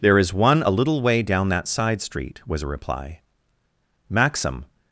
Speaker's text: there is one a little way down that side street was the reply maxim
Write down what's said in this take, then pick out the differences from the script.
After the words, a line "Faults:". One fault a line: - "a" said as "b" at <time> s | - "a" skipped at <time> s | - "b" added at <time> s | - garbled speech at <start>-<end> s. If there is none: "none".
there is one a little way down that side street was a reply maxim
Faults:
- "the" said as "a" at 2.6 s